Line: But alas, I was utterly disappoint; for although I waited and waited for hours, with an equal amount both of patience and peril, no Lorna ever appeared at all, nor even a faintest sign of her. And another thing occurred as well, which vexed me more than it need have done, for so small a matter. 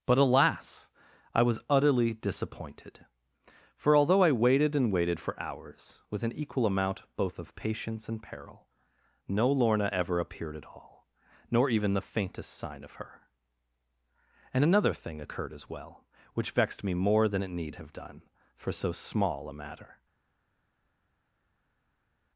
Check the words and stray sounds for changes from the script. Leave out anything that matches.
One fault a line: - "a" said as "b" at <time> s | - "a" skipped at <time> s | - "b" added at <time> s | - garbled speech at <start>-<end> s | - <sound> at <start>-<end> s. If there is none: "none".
- "disappoint" said as "disappointed" at 2.1 s
- "a" said as "the" at 11.9 s